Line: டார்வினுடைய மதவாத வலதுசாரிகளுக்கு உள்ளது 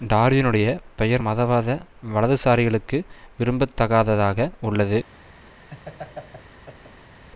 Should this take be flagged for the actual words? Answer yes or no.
yes